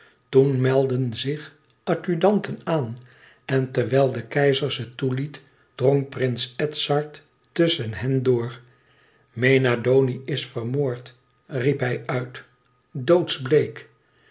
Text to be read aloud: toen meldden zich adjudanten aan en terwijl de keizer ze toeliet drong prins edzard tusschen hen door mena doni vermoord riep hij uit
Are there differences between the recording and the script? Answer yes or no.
yes